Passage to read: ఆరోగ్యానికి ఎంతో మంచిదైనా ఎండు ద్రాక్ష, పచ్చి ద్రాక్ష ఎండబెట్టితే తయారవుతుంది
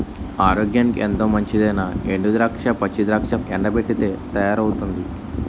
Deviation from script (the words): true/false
false